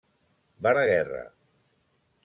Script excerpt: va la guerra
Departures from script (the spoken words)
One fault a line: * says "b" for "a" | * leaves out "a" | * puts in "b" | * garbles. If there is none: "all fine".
all fine